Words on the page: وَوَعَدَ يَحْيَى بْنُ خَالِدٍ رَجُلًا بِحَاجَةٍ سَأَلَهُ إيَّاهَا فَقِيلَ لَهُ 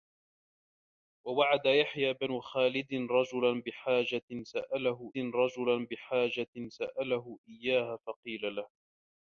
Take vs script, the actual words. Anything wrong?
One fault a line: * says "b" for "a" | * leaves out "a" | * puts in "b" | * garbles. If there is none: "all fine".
* puts in "رَجُلًا بِحَاجَةٍ سَأَلَهُ"